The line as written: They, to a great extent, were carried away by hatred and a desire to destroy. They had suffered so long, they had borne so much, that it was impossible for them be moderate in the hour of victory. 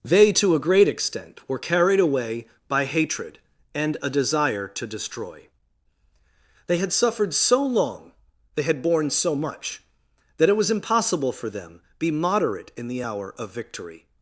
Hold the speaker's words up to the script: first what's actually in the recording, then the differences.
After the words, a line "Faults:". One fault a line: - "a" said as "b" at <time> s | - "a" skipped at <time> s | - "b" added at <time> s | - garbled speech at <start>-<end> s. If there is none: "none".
They, to a great extent, were carried away by hatred and a desire to destroy. They had suffered so long, they had borne so much, that it was impossible for them be moderate in the hour of victory.
Faults:
none